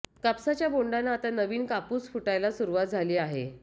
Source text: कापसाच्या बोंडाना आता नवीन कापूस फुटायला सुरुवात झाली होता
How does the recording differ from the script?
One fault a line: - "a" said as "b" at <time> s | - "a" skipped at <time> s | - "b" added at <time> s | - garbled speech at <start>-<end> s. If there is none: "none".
- "होता" said as "आहे" at 3.2 s